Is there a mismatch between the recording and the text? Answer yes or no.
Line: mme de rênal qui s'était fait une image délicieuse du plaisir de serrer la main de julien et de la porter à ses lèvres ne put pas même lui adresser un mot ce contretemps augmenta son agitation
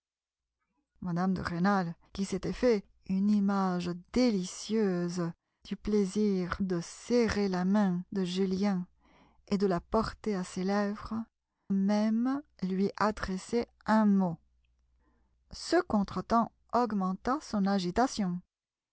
yes